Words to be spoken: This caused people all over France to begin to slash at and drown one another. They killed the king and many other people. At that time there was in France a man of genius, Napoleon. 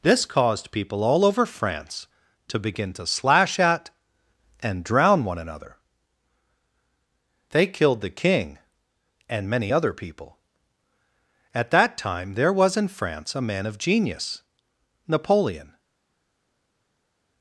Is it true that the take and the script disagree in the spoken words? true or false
false